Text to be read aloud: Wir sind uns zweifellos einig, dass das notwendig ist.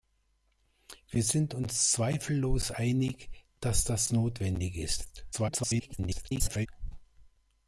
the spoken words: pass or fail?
fail